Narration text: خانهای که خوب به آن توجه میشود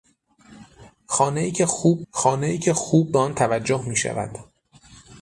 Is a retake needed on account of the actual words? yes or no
yes